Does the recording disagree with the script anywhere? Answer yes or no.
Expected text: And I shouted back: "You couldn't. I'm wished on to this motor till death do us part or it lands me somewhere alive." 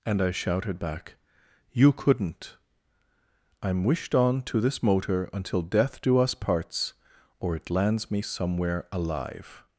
yes